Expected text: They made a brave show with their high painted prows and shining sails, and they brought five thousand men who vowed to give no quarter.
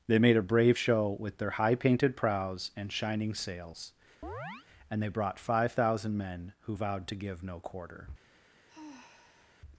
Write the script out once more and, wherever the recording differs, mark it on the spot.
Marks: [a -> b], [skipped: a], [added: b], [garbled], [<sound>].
They made a brave show with their high painted prows and shining sails, [chirp] and they brought five thousand men who vowed to give no quarter. [sigh]